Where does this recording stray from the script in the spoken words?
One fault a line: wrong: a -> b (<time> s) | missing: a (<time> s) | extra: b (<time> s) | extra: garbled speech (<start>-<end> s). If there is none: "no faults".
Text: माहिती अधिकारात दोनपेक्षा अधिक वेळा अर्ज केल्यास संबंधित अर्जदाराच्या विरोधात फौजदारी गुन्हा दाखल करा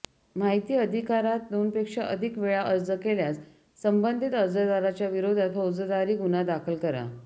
no faults